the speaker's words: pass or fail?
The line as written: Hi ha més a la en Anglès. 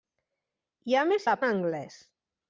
pass